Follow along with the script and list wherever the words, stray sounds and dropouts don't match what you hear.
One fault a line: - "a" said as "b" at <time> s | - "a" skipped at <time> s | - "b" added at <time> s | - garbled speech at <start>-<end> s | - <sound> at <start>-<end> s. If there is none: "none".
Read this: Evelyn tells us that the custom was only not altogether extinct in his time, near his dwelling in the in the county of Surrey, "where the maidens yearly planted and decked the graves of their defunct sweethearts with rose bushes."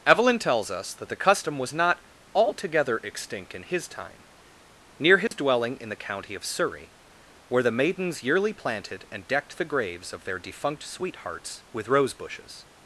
- "only" skipped at 1.7 s
- dropout at 5.3-5.3 s
- "in the" skipped at 6.1 s